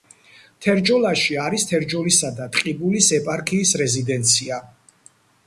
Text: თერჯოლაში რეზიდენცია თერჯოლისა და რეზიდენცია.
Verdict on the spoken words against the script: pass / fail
fail